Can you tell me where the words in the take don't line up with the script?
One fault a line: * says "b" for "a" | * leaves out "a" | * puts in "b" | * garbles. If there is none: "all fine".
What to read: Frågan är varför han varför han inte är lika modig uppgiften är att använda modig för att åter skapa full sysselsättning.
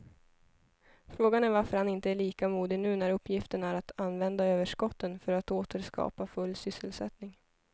* leaves out "varför han"
* puts in "nu när"
* says "överskotten" for "modig"